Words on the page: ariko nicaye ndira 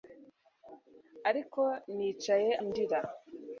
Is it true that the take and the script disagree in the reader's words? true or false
false